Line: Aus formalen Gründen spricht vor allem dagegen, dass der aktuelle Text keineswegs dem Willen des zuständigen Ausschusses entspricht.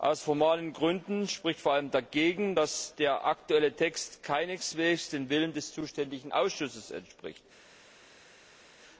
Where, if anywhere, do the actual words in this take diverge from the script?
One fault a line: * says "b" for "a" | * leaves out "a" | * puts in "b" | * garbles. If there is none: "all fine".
all fine